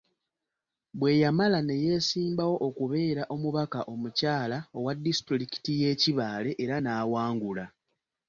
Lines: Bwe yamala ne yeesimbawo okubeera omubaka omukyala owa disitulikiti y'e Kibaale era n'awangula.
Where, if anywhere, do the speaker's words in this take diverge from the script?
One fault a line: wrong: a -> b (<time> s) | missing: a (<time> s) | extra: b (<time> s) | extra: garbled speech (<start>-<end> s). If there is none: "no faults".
no faults